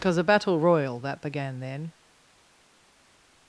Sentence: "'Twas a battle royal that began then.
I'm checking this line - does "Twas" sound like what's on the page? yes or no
no